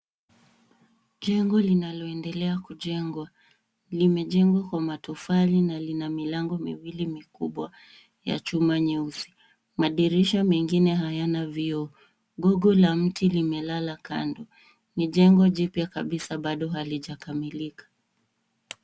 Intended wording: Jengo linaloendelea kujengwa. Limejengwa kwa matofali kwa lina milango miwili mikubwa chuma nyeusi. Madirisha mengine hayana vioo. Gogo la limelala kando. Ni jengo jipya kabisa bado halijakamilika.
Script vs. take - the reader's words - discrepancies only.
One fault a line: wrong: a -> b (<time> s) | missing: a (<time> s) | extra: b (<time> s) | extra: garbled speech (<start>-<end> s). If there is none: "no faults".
wrong: kwa -> na (5.6 s)
extra: ya (8.2 s)
extra: mti (12.9 s)